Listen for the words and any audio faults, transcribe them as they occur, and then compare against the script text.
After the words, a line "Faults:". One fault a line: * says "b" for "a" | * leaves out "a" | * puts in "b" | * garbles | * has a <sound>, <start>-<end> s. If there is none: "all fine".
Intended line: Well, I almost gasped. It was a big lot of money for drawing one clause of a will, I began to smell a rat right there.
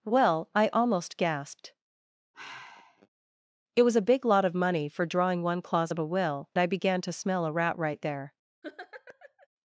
Well, I almost gasped. It was a big lot of money for drawing one clause of a will, I began to smell a rat right there.
Faults:
* has a sigh, 2.3-3.1 s
* has a laugh, 8.6-9.5 s